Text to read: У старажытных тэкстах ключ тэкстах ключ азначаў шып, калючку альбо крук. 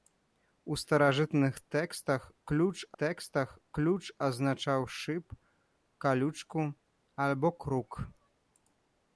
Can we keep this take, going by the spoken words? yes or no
yes